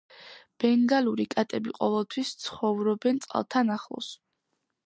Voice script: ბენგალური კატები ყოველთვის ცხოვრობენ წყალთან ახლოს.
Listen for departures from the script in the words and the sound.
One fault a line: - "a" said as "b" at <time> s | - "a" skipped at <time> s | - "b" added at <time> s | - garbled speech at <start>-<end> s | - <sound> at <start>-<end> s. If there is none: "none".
none